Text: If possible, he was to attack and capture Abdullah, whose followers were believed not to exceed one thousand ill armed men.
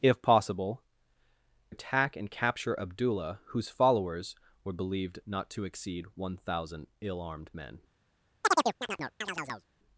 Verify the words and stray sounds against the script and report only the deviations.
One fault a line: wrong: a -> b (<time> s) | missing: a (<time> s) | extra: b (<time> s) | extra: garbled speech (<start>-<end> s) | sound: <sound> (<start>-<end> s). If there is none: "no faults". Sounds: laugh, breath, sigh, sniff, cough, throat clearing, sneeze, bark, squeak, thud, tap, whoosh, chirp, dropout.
missing: he was to (0.8 s)
sound: chirp (8.4-9.7 s)